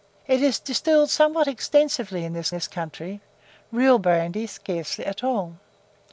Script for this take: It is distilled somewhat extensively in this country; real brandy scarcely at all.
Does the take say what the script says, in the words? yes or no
no